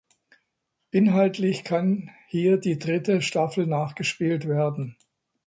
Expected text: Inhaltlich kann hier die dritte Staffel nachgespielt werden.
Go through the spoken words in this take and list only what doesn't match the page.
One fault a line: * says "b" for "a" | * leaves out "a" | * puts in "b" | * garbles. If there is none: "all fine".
all fine